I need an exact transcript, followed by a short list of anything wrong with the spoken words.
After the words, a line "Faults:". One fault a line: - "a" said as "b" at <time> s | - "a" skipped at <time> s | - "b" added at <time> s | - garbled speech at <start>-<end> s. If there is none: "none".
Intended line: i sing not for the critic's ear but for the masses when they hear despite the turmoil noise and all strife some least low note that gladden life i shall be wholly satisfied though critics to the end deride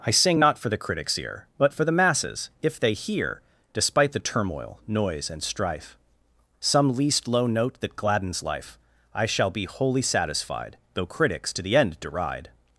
i sing not for the critic's ear but for the masses if they hear despite the turmoil noise and strife some least low note that gladdens life i shall be wholly satisfied though critics to the end deride
Faults:
- "when" said as "if" at 2.6 s
- "all" skipped at 5.4 s
- "gladden" said as "gladdens" at 8.0 s